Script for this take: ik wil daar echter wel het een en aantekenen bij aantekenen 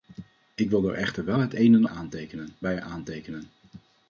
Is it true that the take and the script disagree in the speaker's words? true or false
false